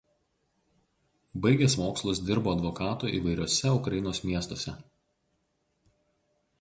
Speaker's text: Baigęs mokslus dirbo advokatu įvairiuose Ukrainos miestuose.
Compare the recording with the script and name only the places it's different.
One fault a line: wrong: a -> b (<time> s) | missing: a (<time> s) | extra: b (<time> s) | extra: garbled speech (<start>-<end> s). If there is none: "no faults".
no faults